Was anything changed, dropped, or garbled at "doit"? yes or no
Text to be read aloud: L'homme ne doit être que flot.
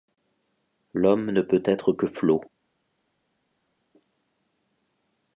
yes